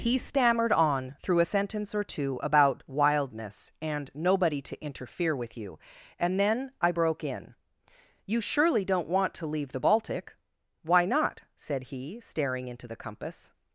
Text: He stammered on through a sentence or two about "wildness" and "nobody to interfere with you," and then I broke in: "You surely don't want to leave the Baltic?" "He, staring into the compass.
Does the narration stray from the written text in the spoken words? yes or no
yes